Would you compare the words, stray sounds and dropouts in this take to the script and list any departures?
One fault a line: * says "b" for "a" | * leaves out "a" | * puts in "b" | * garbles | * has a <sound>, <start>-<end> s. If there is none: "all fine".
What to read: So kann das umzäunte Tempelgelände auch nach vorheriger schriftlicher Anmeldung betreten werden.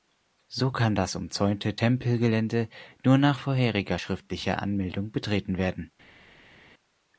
* says "nur" for "auch"